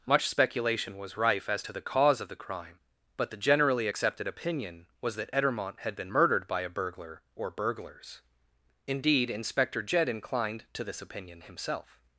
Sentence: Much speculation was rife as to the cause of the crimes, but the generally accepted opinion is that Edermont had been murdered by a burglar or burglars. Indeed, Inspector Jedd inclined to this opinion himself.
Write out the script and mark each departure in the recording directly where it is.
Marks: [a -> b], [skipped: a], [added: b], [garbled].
Much speculation was rife as to the cause of the [crimes, -> crime] but the generally accepted opinion [is -> was] that Edermont had been murdered by a burglar or burglars. Indeed, Inspector Jedd inclined to this opinion himself.